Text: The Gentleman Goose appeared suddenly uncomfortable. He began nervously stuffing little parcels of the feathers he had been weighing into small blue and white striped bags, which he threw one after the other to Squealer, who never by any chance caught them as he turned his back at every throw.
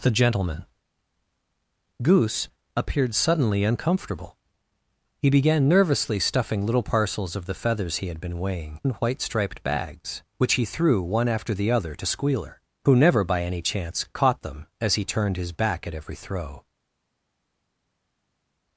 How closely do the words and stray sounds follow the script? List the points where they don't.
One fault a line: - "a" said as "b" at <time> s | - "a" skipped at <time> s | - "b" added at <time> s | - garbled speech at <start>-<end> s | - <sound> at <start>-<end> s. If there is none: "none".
- "into small blue" skipped at 8.8 s